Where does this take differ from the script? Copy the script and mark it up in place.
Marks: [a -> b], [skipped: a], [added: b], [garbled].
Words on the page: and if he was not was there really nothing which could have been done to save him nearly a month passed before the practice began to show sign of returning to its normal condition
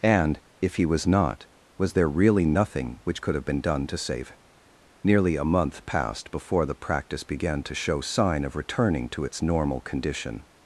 and if he was not was there really nothing which could have been done to save him nearly a month passed before the practice began to show sign of returning to its normal condition